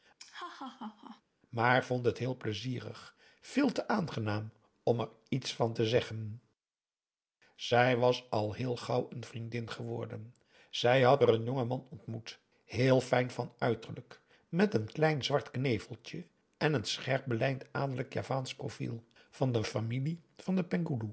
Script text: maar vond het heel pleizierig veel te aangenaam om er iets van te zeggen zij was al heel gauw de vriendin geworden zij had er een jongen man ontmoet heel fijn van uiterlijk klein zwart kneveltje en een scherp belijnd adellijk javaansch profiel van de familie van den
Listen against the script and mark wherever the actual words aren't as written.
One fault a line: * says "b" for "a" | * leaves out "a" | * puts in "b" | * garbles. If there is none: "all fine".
* says "een" for "de"
* puts in "met een"